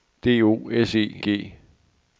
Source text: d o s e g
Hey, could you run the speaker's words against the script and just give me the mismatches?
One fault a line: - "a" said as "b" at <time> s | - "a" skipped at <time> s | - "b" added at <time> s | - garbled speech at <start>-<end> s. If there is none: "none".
none